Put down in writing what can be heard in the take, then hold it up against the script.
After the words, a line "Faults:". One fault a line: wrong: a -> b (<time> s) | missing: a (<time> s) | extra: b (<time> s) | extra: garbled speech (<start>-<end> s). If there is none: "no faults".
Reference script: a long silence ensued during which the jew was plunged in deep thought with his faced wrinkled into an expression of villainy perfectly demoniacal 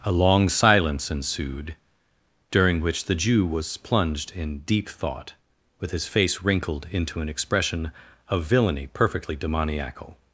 a long silence ensued during which the jew was plunged in deep thought with his face wrinkled into an expression of villainy perfectly demoniacal
Faults:
wrong: faced -> face (6.1 s)